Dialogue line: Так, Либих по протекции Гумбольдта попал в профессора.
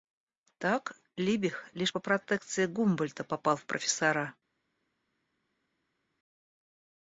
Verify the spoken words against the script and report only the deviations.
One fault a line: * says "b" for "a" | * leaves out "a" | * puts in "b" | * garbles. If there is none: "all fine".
* puts in "лишь"